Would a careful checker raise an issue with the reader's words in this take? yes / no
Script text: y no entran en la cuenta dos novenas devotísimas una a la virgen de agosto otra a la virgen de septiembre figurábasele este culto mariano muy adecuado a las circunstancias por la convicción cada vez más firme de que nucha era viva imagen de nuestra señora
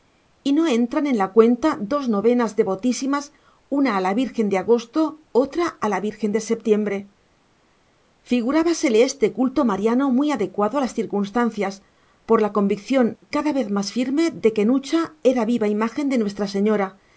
no